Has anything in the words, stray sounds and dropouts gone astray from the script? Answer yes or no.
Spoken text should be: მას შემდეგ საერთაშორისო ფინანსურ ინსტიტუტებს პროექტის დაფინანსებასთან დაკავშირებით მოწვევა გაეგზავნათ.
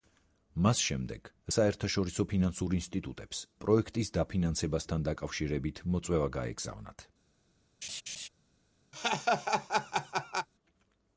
yes